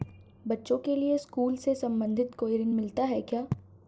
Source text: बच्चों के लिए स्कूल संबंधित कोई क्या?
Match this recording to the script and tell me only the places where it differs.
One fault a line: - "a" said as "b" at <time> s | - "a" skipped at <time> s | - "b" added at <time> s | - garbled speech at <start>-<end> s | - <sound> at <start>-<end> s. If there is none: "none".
- "से" added at 1.6 s
- "ऋण मिलता है" added at 2.6 s